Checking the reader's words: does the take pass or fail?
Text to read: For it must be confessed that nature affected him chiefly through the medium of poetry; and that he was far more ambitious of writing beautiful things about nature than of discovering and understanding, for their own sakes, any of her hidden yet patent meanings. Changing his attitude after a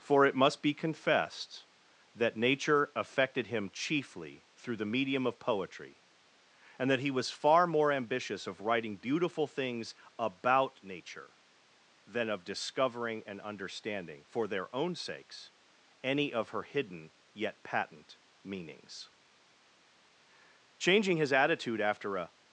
pass